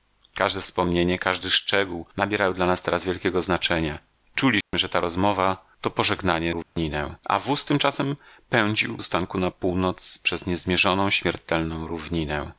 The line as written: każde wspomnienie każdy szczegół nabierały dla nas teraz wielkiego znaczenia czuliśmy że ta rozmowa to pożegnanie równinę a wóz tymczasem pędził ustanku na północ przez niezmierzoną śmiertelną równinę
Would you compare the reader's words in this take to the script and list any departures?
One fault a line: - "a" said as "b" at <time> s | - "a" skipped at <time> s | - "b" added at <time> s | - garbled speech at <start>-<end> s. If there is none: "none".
none